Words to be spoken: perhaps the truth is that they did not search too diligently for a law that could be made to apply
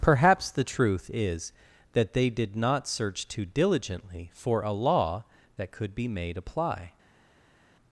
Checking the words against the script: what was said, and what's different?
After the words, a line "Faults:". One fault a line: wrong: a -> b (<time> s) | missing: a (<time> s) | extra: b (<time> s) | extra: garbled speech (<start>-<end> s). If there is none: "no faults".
perhaps the truth is that they did not search too diligently for a law that could be made apply
Faults:
missing: to (6.4 s)